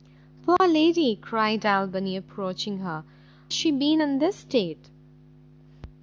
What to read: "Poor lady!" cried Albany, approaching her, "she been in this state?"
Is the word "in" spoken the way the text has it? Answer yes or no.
yes